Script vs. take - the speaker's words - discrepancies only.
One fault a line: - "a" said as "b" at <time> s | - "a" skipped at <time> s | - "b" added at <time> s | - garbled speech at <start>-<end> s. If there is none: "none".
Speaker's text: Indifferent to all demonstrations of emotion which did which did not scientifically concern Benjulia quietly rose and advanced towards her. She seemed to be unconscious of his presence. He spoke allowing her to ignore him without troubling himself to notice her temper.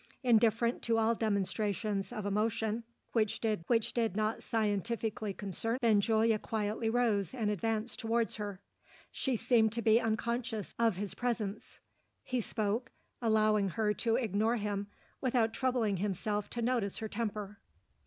none